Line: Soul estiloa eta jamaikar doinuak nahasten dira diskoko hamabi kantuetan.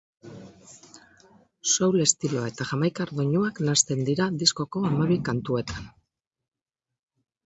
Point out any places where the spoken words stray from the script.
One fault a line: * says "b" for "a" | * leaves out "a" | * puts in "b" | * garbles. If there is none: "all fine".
all fine